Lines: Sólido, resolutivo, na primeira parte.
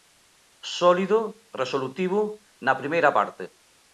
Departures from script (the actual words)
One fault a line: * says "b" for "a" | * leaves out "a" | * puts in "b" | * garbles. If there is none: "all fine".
all fine